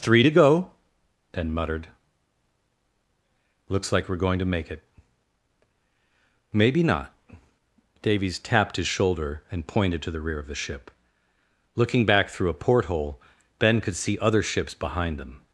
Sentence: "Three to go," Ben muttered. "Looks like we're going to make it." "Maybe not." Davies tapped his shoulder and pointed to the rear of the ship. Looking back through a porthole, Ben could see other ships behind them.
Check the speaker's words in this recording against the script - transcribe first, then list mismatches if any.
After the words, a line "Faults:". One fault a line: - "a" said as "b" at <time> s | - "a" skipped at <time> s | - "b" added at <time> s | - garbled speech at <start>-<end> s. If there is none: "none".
"Three to go," Ben muttered. "Looks like we're going to make it." "Maybe not." Davies tapped his shoulder and pointed to the rear of the ship. Looking back through a porthole, Ben could see other ships behind them.
Faults:
none